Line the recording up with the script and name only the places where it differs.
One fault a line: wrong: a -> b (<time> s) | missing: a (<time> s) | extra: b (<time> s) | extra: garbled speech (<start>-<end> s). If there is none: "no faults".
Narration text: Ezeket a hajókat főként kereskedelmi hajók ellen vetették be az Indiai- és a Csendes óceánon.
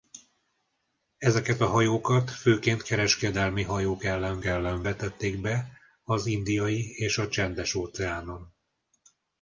extra: ellen (4.4 s)